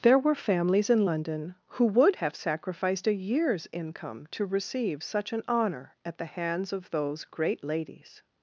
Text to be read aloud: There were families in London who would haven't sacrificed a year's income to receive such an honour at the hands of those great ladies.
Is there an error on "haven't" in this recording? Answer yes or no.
yes